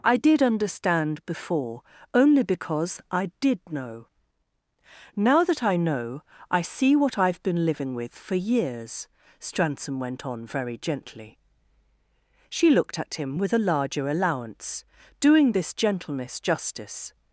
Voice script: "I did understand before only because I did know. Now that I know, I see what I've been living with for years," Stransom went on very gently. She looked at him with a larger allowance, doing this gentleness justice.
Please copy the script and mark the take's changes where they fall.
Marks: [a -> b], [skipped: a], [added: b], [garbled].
"I did understand before only because I did know. Now that I know, I see what I've been living with for years," Stransom went on very gently. She looked at him with a larger allowance, doing this gentleness justice.